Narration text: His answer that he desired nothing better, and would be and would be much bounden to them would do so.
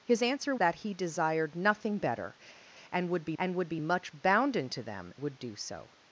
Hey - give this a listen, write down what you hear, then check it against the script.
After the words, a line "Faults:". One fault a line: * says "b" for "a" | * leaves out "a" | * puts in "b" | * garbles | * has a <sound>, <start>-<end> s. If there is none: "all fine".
His answer that he desired nothing better, and would be and would be much bounden to them would do so.
Faults:
all fine